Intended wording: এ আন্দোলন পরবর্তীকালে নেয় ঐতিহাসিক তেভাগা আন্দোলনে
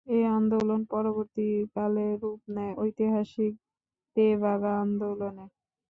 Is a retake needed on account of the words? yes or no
yes